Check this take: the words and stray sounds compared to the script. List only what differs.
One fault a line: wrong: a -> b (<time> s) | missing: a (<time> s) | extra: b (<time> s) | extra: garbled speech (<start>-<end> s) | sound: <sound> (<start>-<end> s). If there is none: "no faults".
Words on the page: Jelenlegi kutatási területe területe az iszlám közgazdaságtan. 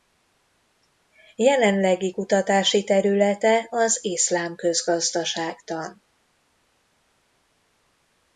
missing: területe (3.7 s)